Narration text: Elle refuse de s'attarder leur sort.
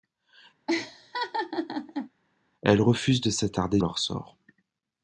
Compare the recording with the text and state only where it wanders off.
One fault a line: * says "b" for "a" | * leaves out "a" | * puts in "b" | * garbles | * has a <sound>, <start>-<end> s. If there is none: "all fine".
* has a laugh, 0.7-2.1 s